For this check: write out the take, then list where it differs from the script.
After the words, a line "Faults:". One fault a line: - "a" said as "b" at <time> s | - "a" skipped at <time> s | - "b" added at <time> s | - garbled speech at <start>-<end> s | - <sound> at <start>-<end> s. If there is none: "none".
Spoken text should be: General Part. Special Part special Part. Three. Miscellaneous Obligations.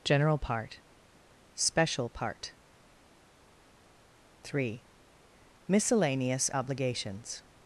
General Part. Special Part. Three. Miscellaneous Obligations.
Faults:
- "special Part" skipped at 2.5 s